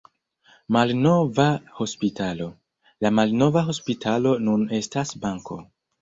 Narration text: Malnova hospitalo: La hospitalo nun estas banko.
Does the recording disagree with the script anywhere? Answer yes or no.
yes